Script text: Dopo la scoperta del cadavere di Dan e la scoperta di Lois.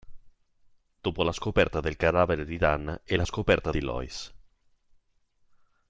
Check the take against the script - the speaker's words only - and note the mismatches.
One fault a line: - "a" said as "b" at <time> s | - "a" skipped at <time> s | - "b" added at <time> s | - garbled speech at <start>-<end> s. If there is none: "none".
none